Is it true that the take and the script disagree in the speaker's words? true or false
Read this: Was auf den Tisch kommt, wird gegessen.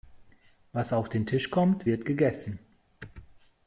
false